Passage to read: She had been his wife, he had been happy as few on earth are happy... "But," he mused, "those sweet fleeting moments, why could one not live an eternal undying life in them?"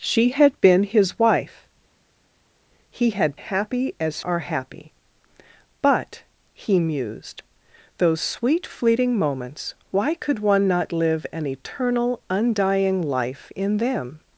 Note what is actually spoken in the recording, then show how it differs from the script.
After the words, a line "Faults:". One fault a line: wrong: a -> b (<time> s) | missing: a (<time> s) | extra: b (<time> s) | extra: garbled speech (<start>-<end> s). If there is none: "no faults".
She had been his wife, he had happy as are happy... "But," he mused, "those sweet fleeting moments, why could one not live an eternal undying life in them?"
Faults:
missing: been (3.4 s)
missing: few on earth (4.2 s)